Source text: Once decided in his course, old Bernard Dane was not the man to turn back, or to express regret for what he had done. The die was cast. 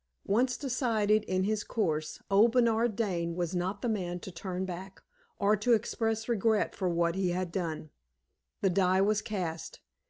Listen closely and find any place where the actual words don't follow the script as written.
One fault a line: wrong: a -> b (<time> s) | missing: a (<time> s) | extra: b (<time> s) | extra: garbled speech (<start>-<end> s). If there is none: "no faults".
no faults